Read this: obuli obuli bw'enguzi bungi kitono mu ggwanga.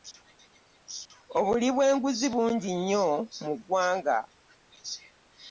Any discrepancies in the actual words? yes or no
yes